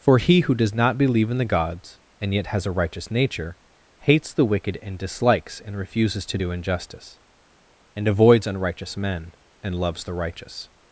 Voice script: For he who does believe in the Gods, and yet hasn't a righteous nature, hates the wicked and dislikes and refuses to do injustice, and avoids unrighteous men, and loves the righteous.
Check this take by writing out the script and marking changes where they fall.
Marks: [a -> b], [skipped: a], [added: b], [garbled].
For he who does [added: not] believe in the Gods, and yet [hasn't -> has] a righteous nature, hates the wicked and dislikes and refuses to do injustice, and avoids unrighteous men, and loves the righteous.